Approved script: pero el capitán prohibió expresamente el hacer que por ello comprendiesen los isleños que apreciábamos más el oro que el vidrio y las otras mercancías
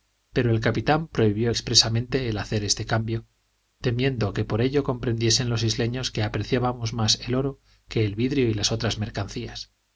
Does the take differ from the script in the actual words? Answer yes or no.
yes